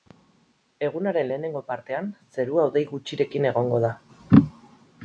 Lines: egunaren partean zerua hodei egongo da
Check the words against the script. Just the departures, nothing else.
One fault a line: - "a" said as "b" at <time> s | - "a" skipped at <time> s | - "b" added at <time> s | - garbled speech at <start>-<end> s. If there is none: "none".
- "lehenengo" added at 1.3 s
- "gutxirekin" added at 2.9 s